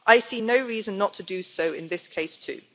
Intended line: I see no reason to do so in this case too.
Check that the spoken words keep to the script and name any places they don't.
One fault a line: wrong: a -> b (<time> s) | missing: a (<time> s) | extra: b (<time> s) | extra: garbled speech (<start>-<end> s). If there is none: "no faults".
extra: not (1.0 s)